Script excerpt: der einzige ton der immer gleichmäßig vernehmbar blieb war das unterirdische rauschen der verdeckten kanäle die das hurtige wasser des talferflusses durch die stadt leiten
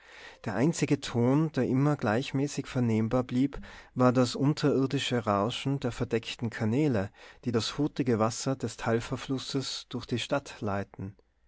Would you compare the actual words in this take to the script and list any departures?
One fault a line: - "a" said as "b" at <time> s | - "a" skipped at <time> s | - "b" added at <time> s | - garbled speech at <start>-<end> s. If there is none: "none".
none